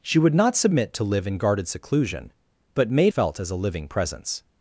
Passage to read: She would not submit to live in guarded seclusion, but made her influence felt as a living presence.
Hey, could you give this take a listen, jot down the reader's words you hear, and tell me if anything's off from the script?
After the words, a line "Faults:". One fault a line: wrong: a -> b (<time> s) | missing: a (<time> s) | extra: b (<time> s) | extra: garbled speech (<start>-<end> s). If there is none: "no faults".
She would not submit to live in guarded seclusion, but made felt as a living presence.
Faults:
missing: her influence (3.1 s)